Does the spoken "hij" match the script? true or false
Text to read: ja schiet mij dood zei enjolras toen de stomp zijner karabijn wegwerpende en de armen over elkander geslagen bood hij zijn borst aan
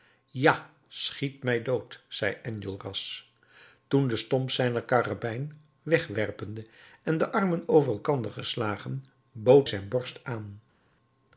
false